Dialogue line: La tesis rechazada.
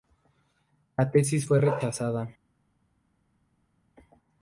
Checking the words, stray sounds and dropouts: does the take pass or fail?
fail